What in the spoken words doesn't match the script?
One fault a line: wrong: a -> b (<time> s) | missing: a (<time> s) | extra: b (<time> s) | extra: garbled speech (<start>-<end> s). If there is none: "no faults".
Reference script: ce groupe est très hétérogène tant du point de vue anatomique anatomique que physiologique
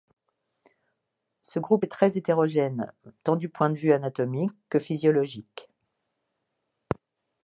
missing: anatomique (4.5 s)